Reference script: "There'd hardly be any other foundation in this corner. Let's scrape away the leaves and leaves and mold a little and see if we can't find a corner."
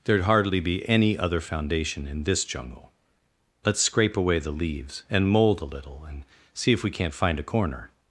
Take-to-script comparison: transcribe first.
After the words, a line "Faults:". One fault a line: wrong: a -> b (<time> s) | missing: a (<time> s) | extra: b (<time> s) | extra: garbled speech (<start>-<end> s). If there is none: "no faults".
"There'd hardly be any other foundation in this jungle. Let's scrape away the leaves and mold a little and see if we can't find a corner."
Faults:
wrong: corner -> jungle (2.5 s)
missing: leaves and (5.3 s)